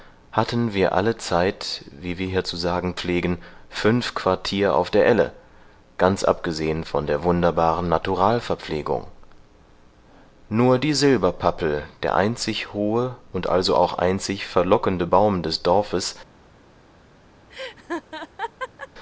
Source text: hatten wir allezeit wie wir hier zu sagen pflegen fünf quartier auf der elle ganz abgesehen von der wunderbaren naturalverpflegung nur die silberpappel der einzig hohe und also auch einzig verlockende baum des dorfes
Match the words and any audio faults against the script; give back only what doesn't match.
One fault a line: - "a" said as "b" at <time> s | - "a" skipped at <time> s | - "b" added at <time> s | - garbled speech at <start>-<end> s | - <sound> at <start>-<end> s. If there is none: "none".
- laugh at 17.5-18.9 s